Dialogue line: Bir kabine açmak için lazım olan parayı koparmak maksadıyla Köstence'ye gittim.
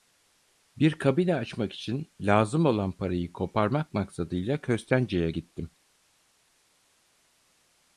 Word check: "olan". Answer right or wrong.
right